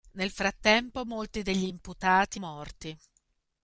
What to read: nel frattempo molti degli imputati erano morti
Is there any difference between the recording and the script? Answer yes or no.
yes